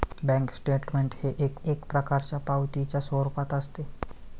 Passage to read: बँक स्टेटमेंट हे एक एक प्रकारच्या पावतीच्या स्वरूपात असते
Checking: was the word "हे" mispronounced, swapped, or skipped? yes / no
no